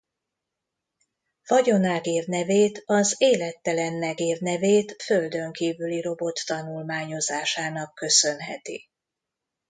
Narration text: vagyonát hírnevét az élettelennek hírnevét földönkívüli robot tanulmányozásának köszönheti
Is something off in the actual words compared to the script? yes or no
no